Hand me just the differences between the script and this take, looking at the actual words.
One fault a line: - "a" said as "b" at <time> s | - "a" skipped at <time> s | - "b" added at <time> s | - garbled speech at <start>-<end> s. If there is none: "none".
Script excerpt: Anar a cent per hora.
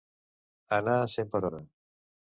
none